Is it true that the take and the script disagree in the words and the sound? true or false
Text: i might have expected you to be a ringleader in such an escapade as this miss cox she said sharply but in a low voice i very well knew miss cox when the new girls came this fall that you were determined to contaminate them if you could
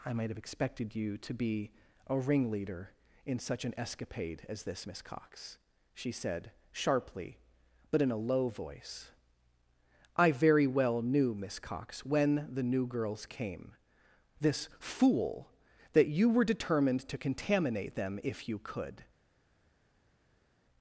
true